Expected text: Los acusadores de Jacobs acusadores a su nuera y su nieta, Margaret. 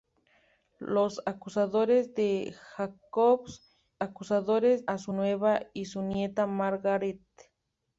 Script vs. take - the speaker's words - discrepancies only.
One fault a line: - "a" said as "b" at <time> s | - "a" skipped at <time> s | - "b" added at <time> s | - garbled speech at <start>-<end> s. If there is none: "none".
none